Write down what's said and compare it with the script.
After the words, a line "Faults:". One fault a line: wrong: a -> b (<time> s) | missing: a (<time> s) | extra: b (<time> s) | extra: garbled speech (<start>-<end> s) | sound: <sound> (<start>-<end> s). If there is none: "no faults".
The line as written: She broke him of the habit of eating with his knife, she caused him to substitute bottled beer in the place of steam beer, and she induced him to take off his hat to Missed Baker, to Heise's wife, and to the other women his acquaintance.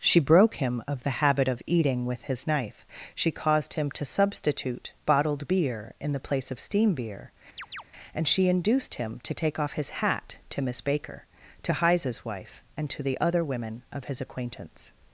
She broke him of the habit of eating with his knife, she caused him to substitute bottled beer in the place of steam beer, and she induced him to take off his hat to Miss Baker, to Heise's wife, and to the other women of his acquaintance.
Faults:
sound: chirp (7.6-7.8 s)
wrong: Missed -> Miss (10.6 s)
extra: of (13.9 s)